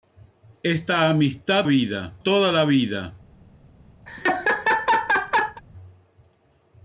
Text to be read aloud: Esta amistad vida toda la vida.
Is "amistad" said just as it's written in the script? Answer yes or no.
yes